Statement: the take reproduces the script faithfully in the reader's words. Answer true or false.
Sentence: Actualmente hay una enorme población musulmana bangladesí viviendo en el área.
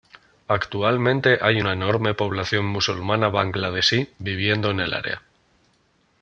true